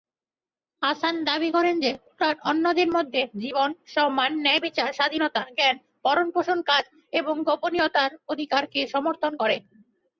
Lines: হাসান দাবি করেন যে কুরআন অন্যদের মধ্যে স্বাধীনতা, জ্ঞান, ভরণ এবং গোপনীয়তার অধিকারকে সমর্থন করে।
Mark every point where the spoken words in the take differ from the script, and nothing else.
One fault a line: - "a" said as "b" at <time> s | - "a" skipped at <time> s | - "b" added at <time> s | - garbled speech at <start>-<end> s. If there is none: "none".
- "জীবন সম্মান ন্যায়বিচার" added at 3.4 s
- "পোষণ কাজ" added at 6.3 s